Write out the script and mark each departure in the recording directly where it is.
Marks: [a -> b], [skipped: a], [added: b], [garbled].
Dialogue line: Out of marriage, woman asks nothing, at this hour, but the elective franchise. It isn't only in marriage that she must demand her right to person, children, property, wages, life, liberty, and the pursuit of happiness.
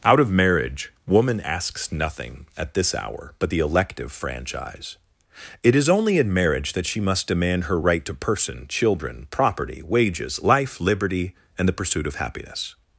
Out of marriage, woman asks nothing, at this hour, but the elective franchise. It [isn't -> is] only in marriage that she must demand her right to person, children, property, wages, life, liberty, and the pursuit of happiness.